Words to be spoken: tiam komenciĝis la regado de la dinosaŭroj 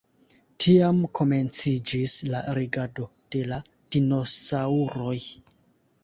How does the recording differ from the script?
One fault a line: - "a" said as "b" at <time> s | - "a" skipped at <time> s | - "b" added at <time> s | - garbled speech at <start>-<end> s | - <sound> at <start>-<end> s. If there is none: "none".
none